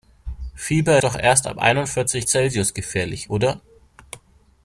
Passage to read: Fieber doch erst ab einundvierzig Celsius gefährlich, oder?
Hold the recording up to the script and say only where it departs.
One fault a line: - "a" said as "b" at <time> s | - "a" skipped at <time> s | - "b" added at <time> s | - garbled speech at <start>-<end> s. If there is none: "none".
none